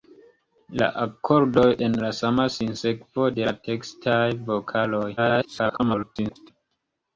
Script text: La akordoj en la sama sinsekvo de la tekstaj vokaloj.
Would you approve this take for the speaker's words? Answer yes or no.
no